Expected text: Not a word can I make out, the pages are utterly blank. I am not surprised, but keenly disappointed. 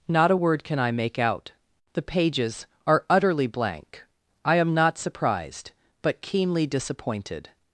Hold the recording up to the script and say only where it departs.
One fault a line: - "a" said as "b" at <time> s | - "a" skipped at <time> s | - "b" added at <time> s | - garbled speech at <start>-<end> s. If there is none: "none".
none